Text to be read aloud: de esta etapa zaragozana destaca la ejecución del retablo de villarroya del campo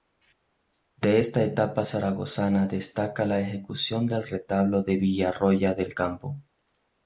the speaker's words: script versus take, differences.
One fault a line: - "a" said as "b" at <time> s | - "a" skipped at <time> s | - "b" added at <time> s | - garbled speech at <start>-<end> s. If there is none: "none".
none